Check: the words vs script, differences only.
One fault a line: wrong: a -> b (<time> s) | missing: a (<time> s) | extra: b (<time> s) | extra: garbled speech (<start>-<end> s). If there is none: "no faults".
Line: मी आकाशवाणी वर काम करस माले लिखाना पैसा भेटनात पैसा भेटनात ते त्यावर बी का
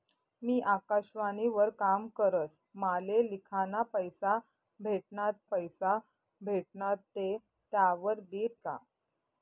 no faults